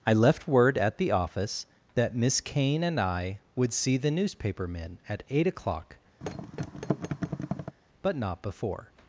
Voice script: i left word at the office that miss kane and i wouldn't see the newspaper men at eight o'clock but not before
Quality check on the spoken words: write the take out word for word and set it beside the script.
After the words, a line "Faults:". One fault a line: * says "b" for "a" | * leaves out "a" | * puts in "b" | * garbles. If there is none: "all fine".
i left word at the office that miss kane and i would see the newspaper men at eight o'clock but not before
Faults:
* says "would" for "wouldn't"